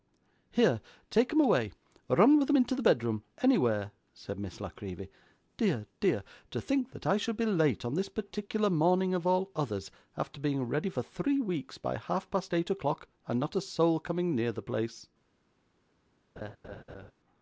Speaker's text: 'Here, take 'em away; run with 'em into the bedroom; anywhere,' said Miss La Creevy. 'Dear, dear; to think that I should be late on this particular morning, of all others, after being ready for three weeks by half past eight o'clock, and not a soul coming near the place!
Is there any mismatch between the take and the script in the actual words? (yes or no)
no